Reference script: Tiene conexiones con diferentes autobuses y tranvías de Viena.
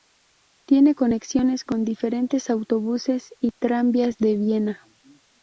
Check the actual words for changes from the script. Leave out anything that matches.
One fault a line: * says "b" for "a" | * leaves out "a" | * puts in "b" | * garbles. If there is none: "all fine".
all fine